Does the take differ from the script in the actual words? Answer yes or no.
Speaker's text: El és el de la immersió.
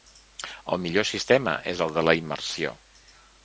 yes